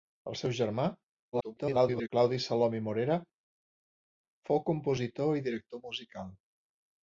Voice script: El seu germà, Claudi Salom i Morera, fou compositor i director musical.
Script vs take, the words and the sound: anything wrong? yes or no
yes